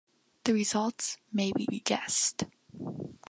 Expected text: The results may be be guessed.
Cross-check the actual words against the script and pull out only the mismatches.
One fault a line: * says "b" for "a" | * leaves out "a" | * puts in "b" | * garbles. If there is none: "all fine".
all fine